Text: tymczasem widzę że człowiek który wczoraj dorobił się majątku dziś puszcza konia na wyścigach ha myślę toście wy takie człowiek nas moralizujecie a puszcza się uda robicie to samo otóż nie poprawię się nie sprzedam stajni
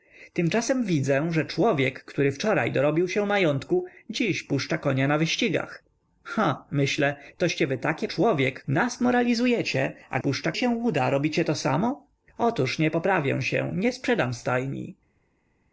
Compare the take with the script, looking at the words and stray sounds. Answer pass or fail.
pass